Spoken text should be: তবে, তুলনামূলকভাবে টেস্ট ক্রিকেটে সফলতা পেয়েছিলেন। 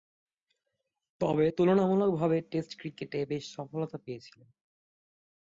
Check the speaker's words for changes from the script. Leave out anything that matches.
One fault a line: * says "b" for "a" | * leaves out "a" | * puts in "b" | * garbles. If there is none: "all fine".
* puts in "বেশ"